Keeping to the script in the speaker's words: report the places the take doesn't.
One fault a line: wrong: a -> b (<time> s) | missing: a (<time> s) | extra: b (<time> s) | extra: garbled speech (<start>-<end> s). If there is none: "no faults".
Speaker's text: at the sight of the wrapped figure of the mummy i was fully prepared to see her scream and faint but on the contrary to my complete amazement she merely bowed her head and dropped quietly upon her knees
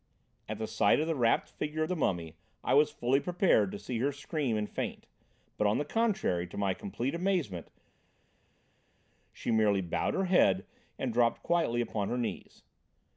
no faults